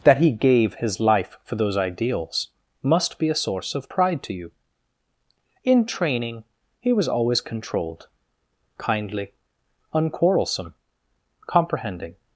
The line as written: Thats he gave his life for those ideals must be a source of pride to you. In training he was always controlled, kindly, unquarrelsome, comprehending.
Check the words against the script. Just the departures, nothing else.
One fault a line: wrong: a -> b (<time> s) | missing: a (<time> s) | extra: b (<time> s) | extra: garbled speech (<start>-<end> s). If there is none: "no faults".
wrong: Thats -> That (0.0 s)